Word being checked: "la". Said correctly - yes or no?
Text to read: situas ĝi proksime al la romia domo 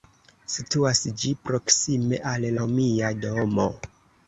no